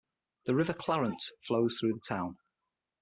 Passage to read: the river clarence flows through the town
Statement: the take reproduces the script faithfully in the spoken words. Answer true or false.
true